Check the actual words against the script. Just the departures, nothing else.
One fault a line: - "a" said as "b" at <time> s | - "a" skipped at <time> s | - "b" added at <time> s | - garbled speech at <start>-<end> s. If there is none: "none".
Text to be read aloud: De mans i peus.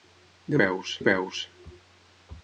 - "mans" said as "peus" at 0.6 s